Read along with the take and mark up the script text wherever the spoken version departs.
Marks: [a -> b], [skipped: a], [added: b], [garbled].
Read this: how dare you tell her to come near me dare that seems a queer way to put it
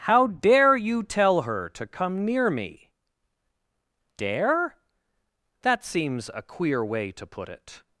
how dare you tell her to come near me dare that seems a queer way to put it